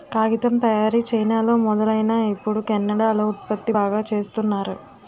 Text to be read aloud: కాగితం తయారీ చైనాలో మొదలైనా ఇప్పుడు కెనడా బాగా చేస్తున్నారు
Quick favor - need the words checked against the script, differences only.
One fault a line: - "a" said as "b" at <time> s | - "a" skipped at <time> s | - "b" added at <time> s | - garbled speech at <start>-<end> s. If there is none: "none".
- "లో ఉత్పత్తి" added at 3.1 s